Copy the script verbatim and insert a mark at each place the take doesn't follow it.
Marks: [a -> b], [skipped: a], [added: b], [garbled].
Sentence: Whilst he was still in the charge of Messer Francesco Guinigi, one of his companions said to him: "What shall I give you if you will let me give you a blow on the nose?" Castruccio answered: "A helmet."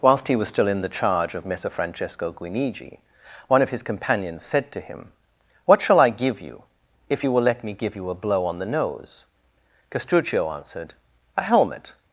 Whilst he was still in the charge of Messer Francesco Guinigi, one of his companions said to him: "What shall I give you if you will let me give you a blow on the nose?" Castruccio answered: "A helmet."